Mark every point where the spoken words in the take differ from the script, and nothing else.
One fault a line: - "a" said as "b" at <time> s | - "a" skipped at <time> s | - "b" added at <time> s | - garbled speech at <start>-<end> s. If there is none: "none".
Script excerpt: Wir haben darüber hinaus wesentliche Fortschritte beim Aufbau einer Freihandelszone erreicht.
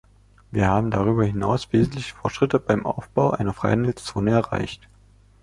none